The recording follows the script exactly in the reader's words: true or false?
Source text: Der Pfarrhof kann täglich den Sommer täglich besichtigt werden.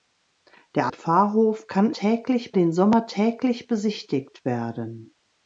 true